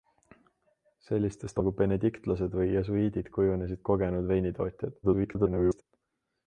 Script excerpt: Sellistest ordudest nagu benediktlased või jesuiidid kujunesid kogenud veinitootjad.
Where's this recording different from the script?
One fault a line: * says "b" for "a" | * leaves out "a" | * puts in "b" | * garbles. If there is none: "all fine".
* leaves out "ordudest"
* garbles